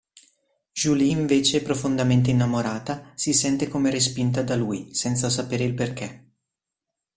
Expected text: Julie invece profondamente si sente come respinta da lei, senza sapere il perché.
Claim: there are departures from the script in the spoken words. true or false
true